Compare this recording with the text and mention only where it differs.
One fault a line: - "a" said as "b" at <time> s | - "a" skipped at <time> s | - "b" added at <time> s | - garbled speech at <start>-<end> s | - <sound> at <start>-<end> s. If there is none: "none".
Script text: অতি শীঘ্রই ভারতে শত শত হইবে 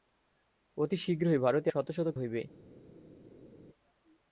none